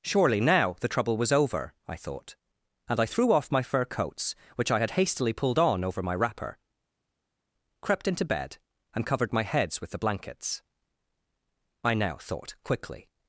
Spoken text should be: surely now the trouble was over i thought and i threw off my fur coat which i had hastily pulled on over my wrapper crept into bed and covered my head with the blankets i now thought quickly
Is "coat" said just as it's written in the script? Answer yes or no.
no